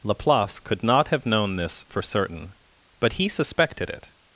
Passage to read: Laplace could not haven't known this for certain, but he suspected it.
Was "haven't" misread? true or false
true